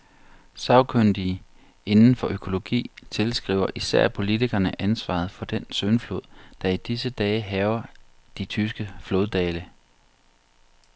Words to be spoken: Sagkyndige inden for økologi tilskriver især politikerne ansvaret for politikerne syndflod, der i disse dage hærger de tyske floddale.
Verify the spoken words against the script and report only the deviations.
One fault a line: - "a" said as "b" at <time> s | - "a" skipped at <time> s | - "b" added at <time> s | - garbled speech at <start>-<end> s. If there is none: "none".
- "politikerne" said as "den" at 5.4 s